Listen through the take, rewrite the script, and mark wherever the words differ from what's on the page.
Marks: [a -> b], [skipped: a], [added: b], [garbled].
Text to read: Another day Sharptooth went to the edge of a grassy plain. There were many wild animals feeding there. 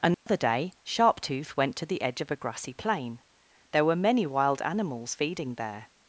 Another day Sharptooth went to the edge of a grassy plain. There were many wild animals feeding there.